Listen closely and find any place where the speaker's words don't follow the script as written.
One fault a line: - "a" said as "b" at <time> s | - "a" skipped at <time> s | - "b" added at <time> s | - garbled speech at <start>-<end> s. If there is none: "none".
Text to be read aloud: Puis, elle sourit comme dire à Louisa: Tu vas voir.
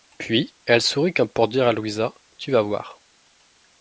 - "pour" added at 1.3 s